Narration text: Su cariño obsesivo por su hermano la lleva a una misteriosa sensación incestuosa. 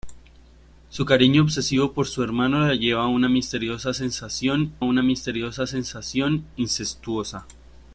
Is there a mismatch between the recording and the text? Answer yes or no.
yes